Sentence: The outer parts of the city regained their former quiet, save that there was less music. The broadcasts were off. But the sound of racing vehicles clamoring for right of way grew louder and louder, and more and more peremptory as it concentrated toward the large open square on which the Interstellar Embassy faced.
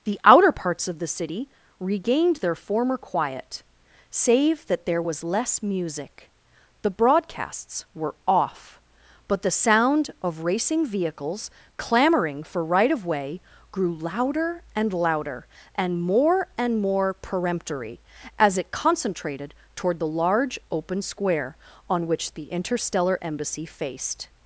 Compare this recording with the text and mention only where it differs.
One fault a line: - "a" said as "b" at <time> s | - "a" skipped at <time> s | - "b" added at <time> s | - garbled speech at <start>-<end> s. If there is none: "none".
none